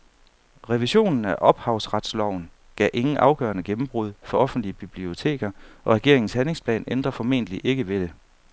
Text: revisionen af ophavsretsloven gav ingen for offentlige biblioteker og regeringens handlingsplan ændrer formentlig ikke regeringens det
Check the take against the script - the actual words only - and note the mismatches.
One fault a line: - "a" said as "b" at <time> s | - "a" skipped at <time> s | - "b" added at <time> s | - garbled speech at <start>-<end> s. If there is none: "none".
- "afgørende gennembrud" added at 3.2 s
- "regeringens" said as "ved" at 7.9 s